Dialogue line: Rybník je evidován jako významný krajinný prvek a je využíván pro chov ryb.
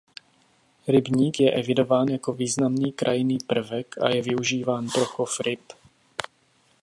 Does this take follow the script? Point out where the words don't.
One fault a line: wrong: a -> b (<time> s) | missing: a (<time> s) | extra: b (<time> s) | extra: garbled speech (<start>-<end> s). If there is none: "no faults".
no faults